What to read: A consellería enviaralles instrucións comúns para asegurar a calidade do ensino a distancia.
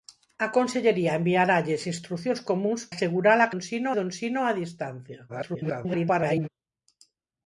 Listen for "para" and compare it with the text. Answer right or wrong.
wrong